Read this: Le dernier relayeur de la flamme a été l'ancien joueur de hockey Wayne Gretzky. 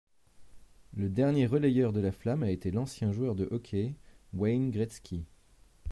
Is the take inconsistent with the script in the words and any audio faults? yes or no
no